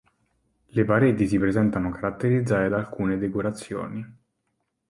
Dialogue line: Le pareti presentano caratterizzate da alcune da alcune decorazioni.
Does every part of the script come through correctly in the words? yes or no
no